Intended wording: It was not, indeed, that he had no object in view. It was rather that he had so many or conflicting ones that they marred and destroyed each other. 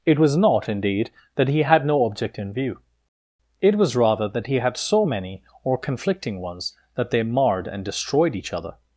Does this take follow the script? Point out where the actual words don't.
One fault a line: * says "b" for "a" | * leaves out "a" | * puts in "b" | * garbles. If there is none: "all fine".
all fine